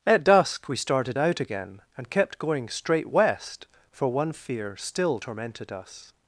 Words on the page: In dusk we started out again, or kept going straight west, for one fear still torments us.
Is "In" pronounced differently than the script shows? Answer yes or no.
yes